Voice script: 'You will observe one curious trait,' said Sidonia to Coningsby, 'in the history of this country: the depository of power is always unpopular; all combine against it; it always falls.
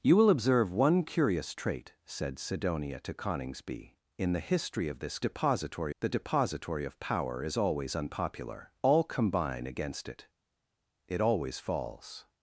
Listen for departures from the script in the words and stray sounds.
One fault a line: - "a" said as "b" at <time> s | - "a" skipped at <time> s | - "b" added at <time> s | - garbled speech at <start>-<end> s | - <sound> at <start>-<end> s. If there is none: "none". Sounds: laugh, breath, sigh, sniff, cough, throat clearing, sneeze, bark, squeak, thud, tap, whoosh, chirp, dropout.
- "country" said as "depository" at 5.2 s